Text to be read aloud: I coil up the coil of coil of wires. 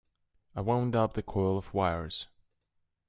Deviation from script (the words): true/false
true